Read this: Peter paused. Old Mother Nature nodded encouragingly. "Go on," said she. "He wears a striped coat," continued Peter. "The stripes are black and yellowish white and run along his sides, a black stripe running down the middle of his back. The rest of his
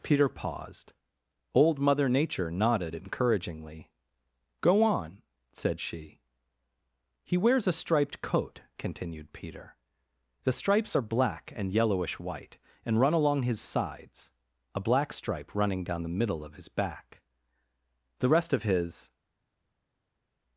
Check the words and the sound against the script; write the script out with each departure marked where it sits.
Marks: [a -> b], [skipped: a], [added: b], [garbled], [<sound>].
Peter paused. Old Mother Nature nodded encouragingly. "Go on," said she. "He wears a striped coat," continued Peter. "The stripes are black and yellowish white and run along his sides, a black stripe running down the middle of his back. The rest of his